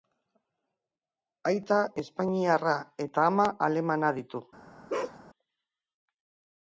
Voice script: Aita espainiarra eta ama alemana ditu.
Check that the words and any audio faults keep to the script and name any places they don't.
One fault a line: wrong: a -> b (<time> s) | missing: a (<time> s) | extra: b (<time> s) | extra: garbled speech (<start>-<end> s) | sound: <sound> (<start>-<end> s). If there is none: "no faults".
sound: bark (4.9-5.2 s)